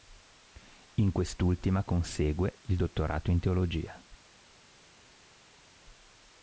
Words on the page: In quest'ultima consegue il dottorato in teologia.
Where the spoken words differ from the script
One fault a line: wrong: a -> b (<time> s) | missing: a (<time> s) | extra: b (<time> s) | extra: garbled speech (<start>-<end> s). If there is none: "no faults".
no faults